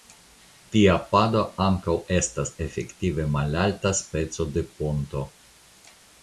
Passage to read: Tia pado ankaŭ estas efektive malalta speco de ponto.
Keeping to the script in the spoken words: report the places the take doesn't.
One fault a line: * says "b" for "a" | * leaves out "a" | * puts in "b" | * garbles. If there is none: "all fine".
all fine